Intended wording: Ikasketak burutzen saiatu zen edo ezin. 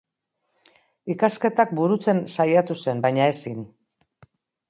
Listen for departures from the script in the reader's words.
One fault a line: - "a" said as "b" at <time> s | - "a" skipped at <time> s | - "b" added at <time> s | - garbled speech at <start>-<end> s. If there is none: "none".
- "edo" said as "baina" at 3.1 s